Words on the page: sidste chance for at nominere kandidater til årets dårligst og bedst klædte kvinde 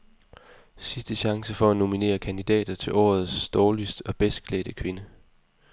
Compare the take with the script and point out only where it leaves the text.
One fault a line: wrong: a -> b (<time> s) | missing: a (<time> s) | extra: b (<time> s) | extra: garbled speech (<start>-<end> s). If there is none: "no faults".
no faults